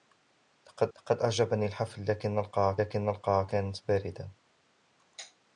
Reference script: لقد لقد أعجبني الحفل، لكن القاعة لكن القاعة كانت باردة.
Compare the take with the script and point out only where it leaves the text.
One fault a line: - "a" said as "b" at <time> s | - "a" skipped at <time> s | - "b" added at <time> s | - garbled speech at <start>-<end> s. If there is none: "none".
none